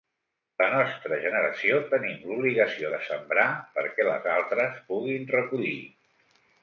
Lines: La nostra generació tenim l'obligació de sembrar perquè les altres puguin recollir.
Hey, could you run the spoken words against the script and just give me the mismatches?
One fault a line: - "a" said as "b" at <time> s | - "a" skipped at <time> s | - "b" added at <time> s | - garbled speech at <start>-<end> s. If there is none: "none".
none